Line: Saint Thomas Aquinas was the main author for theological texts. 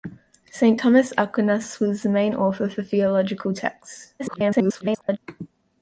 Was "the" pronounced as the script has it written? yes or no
yes